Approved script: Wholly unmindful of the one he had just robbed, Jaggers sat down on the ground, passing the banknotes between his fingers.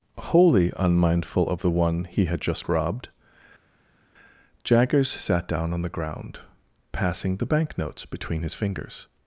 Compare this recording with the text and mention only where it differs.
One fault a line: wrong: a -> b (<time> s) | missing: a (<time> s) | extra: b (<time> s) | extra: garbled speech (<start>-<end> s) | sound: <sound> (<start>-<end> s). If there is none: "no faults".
no faults